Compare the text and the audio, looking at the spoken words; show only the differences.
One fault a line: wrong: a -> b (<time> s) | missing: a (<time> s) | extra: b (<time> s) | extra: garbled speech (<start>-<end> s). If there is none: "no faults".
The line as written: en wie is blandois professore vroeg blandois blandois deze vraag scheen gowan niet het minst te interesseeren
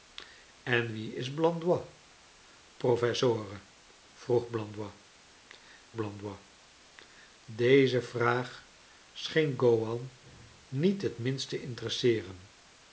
no faults